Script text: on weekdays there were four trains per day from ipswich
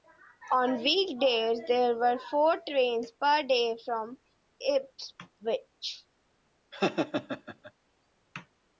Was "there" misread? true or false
false